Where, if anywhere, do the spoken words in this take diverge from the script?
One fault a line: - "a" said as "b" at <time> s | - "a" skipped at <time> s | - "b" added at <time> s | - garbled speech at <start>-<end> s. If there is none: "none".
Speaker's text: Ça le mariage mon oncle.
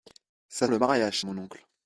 none